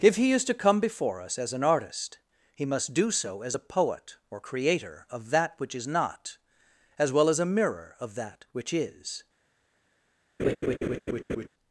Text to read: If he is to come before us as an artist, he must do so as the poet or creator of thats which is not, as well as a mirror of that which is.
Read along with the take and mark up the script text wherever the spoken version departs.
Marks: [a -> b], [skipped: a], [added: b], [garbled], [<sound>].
If he is to come before us as an artist, he must do so as [the -> a] poet or creator of [thats -> that] which is not, as well as a mirror of that which is. [laugh]